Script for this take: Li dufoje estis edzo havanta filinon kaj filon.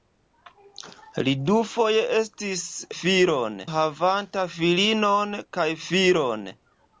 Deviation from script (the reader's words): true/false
true